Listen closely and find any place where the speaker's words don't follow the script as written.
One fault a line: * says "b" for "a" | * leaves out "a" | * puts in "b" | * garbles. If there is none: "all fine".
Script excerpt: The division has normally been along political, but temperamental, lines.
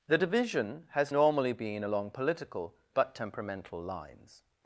all fine